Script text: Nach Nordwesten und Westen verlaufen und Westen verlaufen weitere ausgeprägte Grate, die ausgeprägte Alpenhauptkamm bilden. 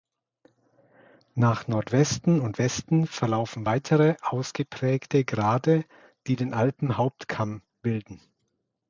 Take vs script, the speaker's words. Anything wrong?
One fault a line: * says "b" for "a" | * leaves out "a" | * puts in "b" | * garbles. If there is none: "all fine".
* leaves out "und Westen verlaufen"
* says "den" for "ausgeprägte"